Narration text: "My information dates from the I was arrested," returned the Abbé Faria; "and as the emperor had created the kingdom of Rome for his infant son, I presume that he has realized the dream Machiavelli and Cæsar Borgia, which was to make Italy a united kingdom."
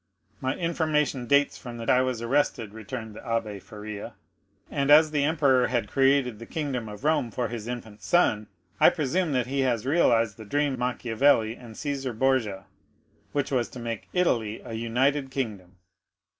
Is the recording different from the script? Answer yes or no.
no